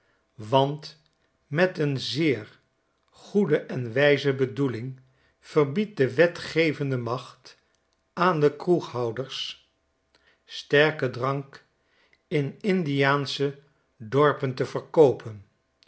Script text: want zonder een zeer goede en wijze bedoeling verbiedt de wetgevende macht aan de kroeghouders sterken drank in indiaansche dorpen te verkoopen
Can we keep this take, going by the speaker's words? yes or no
no